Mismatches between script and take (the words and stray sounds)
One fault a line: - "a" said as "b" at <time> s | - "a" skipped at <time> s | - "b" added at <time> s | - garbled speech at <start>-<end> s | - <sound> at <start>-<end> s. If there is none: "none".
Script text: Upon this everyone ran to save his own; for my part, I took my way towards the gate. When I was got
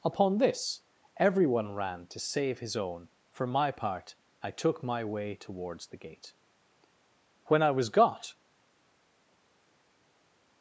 none